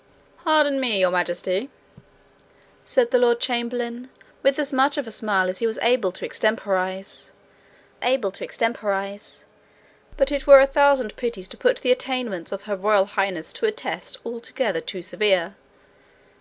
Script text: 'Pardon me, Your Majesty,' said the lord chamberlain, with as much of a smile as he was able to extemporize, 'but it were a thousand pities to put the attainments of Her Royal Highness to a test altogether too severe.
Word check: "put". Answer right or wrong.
right